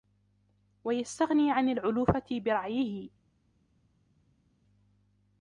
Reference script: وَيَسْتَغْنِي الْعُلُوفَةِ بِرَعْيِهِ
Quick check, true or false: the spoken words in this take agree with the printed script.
false